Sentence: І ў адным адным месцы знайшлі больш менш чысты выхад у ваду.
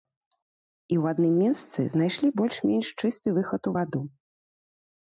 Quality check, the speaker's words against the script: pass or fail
fail